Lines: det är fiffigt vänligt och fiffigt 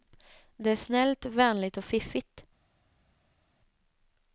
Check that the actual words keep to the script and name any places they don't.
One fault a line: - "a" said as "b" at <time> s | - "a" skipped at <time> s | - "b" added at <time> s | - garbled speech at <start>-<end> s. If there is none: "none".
- "fiffigt" said as "snällt" at 0.8 s